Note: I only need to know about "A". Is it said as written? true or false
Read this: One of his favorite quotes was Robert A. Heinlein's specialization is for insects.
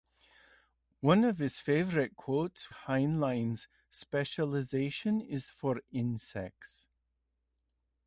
false